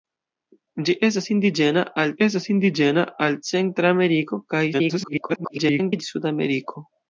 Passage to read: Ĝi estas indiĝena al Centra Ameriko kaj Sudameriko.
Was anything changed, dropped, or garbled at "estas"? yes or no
no